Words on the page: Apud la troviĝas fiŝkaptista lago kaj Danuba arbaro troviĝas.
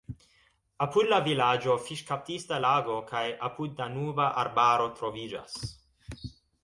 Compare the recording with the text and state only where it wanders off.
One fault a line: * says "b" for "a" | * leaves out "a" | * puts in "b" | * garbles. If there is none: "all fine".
* says "vilaĝo" for "troviĝas"
* puts in "apud"